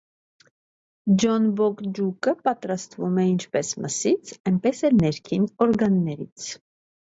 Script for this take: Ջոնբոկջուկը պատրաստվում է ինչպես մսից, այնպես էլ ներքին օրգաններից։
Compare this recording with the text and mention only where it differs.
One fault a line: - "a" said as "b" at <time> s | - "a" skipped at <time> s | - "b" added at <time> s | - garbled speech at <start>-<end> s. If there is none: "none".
none